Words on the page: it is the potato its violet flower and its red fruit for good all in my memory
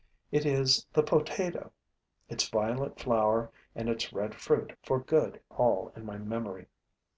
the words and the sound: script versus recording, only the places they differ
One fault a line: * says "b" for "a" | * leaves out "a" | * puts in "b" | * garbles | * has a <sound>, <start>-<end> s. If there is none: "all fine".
all fine